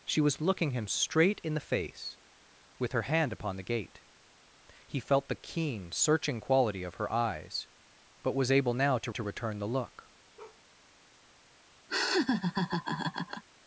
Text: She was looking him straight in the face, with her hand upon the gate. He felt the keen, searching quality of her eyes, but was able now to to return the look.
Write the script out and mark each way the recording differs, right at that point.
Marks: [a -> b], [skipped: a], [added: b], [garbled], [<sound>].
She was looking him straight in the face, with her hand upon the gate. He felt the keen, searching quality of her eyes, but was able now to to return the look. [bark] [laugh]